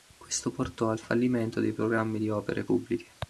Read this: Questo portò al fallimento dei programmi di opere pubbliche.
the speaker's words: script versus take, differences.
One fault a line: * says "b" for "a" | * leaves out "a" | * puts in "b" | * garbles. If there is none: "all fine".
all fine